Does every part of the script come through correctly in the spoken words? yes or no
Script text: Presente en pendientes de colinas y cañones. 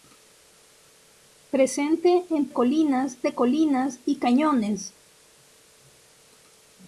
no